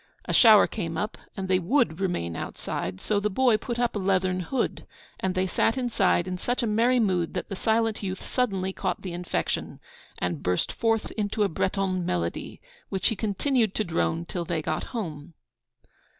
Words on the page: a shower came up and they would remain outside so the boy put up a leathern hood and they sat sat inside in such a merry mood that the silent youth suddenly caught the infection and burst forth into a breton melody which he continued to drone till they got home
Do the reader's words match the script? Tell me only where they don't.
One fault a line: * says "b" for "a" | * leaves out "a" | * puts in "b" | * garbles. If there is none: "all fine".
* leaves out "sat"